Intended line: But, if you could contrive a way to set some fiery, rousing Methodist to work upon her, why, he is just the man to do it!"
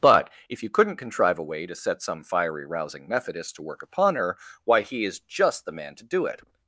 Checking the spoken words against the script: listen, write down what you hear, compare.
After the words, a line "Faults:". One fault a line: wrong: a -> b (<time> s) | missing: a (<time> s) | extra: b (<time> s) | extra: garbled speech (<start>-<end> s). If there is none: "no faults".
But, if you couldn't contrive a way to set some fiery, rousing Methodist to work upon her, why, he is just the man to do it!"
Faults:
wrong: could -> couldn't (0.7 s)